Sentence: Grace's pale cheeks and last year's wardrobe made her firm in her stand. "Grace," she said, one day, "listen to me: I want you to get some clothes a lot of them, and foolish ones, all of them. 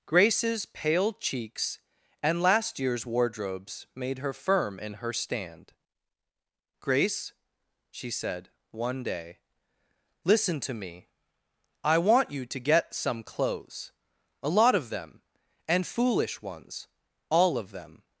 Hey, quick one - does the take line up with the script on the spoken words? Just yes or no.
no